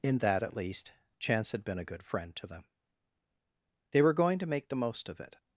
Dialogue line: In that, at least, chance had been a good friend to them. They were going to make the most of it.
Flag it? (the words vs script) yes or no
no